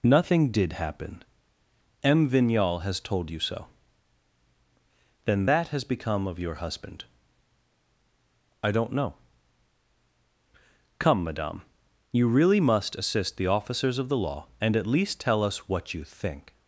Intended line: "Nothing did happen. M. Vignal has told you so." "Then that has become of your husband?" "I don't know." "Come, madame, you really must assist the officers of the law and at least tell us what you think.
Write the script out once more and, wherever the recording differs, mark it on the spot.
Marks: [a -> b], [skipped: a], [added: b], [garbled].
"Nothing did happen. M. Vignal has told you so." "Then that has become of your husband?" "I don't know." "Come, madame, you really must assist the officers of the law and at least tell us what you think.